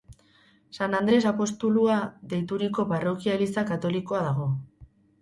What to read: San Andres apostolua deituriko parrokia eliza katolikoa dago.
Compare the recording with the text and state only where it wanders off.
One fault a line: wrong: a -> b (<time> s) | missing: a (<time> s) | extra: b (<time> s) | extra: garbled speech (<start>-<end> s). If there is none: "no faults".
no faults